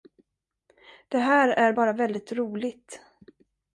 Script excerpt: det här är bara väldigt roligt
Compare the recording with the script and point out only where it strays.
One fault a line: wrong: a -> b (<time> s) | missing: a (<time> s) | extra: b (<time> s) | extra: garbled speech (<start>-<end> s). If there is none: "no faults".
no faults